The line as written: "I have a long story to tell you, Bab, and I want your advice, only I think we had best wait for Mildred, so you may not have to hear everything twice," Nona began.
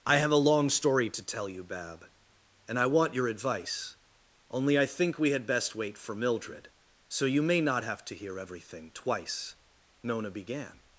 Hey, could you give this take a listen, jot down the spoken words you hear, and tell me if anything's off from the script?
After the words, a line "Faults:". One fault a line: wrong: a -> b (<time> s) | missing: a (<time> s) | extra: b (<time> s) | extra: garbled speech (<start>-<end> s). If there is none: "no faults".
"I have a long story to tell you, Bab, and I want your advice, only I think we had best wait for Mildred, so you may not have to hear everything twice," Nona began.
Faults:
no faults